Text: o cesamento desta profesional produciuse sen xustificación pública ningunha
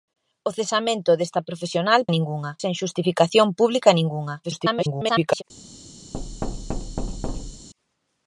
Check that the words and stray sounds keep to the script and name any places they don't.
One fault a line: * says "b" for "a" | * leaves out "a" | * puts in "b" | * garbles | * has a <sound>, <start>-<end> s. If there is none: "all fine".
* says "ningunha" for "produciuse"
* garbles
* has a thud, 6.1-7.7 s